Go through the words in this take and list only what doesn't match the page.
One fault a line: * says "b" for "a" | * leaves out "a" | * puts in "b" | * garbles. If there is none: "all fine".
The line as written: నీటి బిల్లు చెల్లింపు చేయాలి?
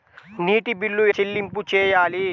all fine